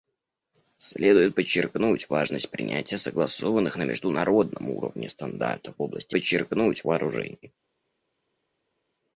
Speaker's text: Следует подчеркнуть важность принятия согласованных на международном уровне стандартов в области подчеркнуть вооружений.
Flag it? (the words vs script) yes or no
no